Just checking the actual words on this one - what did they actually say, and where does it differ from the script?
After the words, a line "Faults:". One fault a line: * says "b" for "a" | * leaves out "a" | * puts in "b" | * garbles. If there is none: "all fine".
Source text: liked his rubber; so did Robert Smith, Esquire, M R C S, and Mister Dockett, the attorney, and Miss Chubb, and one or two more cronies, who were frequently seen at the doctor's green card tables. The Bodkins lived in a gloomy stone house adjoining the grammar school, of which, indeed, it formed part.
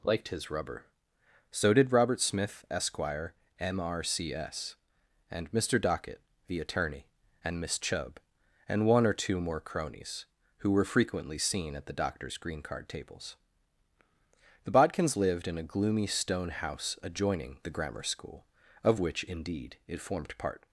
liked his rubber; so did Robert Smith, Esquire, M R C S, and Mister Dockett, the attorney, and Miss Chubb, and one or two more cronies, who were frequently seen at the doctor's green card tables. The Bodkins lived in a gloomy stone house adjoining the grammar school, of which, indeed, it formed part.
Faults:
all fine